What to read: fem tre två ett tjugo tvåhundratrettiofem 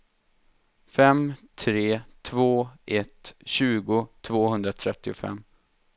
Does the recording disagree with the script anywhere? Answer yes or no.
no